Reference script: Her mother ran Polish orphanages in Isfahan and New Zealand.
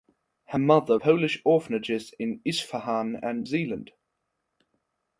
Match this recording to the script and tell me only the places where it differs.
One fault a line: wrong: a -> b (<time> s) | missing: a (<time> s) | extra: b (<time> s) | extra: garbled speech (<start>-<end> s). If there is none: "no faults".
missing: ran (1.0 s)
missing: New (3.5 s)